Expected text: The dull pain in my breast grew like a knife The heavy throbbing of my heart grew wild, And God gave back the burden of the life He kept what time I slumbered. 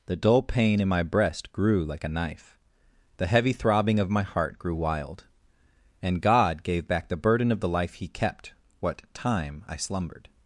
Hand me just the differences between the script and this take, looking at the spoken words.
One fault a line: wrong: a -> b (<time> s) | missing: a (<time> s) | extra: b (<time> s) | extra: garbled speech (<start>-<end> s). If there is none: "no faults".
no faults